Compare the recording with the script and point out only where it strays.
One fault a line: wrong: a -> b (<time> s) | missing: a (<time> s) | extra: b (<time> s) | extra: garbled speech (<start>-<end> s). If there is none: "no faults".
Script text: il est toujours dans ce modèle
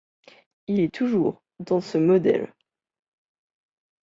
no faults